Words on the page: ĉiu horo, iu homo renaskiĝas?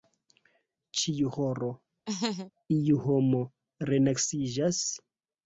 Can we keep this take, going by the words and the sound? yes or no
no